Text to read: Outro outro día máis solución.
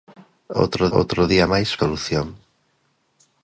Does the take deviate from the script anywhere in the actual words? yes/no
no